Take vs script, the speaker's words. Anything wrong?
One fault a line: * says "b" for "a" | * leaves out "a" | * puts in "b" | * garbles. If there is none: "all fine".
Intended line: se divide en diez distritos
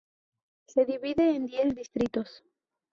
all fine